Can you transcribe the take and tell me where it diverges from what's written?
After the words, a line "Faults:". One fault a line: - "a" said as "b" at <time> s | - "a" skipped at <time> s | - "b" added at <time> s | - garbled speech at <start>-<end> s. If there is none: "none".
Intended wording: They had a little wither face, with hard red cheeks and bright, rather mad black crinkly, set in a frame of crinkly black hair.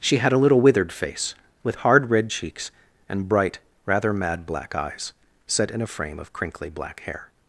She had a little withered face, with hard red cheeks and bright, rather mad black eyes, set in a frame of crinkly black hair.
Faults:
- "They" said as "She" at 0.0 s
- "wither" said as "withered" at 0.6 s
- "crinkly" said as "eyes" at 4.7 s